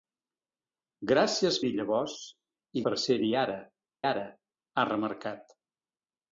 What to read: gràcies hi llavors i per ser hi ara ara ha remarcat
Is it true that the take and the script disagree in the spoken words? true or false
false